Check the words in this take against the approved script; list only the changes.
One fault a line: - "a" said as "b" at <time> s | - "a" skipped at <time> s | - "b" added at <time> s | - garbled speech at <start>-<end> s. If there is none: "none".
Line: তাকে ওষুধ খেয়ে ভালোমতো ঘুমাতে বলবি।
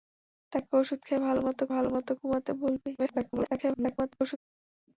- "ভালোমতো" added at 1.7 s
- garbled speech at 3.0-4.4 s